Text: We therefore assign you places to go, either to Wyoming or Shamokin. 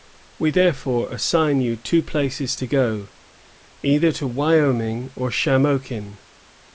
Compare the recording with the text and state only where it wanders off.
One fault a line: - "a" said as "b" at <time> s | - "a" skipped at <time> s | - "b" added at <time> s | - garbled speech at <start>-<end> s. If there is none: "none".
- "two" added at 1.7 s